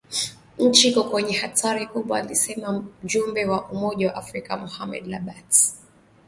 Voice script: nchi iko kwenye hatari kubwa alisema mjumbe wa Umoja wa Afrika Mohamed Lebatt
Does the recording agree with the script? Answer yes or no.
yes